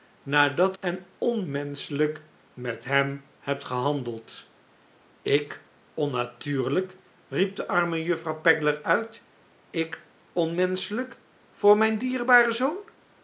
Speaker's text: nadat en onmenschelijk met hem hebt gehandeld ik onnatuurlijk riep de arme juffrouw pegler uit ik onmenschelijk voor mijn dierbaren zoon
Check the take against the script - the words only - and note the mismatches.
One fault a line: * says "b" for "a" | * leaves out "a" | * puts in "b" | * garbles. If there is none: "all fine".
all fine